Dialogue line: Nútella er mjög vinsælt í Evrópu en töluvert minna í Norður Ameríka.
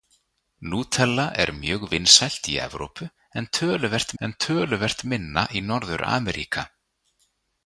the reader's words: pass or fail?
fail